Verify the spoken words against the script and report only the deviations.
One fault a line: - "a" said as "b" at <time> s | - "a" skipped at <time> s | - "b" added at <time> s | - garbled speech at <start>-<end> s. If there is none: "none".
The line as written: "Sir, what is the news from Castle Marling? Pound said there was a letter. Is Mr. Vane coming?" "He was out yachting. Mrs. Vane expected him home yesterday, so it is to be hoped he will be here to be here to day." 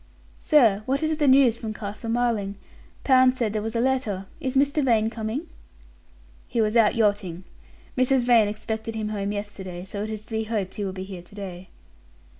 - "be here to" skipped at 11.3 s